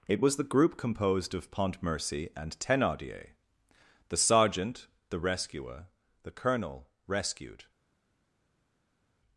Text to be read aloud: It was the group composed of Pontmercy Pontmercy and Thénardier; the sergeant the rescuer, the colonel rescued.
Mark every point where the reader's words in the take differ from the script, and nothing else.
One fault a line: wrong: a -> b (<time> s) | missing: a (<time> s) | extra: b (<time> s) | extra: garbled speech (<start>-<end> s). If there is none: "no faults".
missing: Pontmercy (2.3 s)